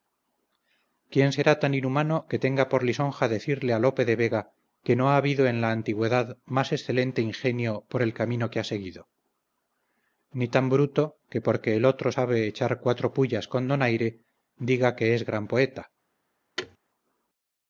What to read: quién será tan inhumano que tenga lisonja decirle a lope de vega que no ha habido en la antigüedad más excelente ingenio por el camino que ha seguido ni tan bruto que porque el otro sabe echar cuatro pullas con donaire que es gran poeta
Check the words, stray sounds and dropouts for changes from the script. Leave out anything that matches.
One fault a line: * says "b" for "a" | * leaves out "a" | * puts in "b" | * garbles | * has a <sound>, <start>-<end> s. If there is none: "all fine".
* puts in "por"
* puts in "diga"
* has a thud, 16.6-16.8 s